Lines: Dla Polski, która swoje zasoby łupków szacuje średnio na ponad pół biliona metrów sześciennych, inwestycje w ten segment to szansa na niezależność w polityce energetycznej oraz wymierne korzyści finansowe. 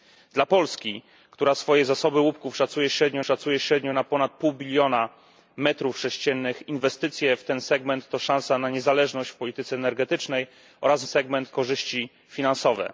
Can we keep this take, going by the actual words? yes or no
no